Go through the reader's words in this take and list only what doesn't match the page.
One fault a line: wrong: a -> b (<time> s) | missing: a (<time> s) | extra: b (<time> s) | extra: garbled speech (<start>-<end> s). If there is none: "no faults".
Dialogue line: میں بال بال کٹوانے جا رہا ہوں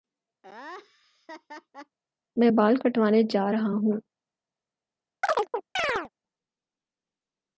missing: بال (2.8 s)